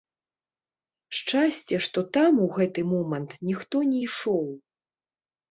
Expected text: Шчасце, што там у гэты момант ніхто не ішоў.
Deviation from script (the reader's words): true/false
false